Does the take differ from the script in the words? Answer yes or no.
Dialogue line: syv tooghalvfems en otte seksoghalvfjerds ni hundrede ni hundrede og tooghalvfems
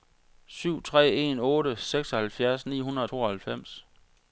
yes